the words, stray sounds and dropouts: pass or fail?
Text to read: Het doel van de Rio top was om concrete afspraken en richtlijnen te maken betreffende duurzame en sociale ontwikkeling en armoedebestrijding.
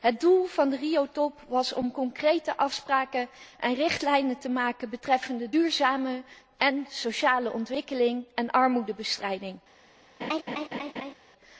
fail